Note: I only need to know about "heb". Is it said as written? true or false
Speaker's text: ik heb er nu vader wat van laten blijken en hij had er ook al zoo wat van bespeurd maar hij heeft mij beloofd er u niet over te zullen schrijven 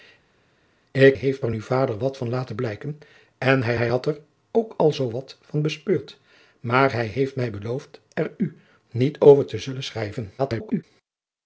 false